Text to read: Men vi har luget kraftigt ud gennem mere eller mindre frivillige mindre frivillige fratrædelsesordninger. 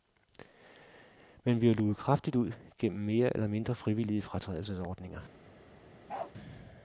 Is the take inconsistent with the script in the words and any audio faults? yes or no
yes